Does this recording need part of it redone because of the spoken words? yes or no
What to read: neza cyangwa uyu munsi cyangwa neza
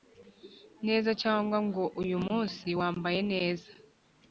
yes